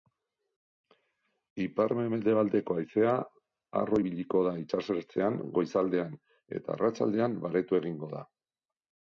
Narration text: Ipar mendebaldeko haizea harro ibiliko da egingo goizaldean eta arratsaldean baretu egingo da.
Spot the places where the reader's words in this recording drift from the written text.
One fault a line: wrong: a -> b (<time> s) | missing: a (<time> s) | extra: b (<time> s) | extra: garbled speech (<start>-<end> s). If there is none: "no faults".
wrong: egingo -> itsasertzean (4.6 s)